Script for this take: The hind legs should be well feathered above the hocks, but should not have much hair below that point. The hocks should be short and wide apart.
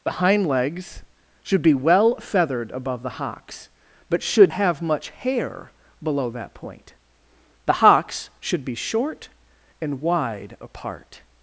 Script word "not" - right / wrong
wrong